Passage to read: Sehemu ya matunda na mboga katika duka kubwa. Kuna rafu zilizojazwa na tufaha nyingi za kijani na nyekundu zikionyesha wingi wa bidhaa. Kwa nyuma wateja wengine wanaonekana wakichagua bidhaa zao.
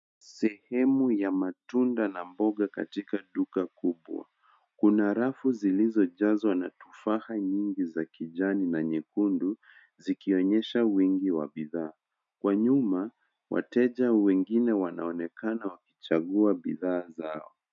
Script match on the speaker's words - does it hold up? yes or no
yes